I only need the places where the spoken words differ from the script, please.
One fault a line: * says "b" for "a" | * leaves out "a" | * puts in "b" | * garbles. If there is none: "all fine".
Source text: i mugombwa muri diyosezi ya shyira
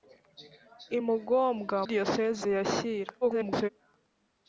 * leaves out "muri"
* garbles